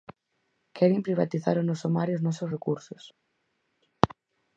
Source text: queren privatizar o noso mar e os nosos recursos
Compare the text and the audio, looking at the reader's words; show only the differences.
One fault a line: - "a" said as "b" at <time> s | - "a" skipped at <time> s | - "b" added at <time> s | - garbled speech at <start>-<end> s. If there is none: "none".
none